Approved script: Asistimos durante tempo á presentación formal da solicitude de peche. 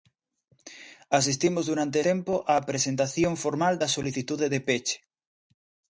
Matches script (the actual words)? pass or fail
pass